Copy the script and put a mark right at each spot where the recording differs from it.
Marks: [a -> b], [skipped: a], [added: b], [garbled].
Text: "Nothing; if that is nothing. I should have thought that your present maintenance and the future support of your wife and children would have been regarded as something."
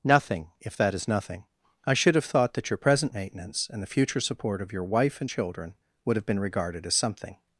"Nothing; if that is nothing. I should have thought that your present maintenance and the future support of your wife and children would have been regarded as something."